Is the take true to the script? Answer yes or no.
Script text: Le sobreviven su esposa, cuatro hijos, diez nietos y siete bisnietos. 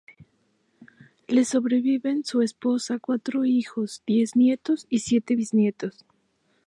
yes